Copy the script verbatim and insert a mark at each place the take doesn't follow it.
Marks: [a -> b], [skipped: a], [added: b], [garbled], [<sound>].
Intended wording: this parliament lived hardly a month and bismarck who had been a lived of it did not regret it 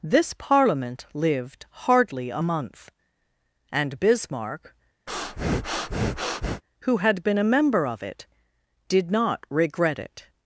this parliament lived hardly a month and bismarck [breath] who had been a [lived -> member] of it did not regret it